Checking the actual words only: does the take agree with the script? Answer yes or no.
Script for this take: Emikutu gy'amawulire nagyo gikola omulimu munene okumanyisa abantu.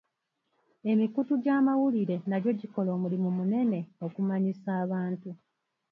yes